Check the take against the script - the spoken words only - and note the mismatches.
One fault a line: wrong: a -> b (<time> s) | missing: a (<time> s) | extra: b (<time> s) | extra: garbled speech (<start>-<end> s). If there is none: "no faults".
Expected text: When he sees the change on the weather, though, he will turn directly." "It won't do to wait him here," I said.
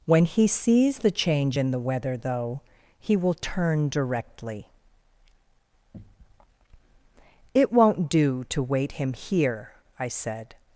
wrong: on -> in (1.6 s)